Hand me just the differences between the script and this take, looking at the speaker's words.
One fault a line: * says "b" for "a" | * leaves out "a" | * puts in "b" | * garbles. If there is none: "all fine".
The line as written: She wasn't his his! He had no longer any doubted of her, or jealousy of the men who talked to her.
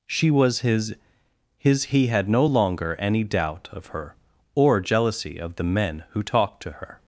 * says "was" for "wasn't"
* says "doubt" for "doubted"